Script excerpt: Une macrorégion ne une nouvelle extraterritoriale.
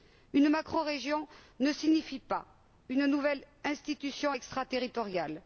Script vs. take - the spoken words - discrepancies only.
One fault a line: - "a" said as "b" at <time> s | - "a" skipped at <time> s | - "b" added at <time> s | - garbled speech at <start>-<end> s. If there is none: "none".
- "signifie pas" added at 1.7 s
- "institution" added at 3.6 s